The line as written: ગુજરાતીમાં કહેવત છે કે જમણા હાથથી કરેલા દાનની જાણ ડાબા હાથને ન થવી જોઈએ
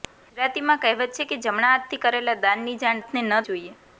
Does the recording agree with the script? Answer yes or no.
no